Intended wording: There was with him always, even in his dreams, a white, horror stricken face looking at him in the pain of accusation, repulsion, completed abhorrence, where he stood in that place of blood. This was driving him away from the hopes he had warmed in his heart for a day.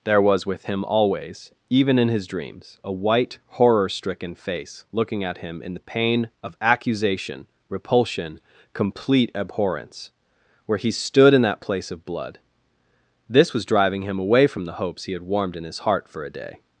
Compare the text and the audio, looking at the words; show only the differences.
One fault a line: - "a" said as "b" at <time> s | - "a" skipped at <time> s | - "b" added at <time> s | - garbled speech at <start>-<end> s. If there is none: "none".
- "completed" said as "complete" at 8.7 s